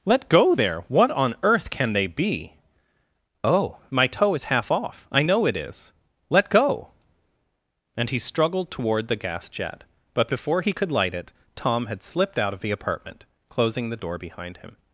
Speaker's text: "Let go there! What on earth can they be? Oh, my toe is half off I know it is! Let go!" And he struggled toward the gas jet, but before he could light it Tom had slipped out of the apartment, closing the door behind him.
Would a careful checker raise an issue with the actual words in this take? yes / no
no